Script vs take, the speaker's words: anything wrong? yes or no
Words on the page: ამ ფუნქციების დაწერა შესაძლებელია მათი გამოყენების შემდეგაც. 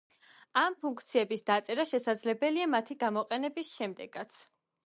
no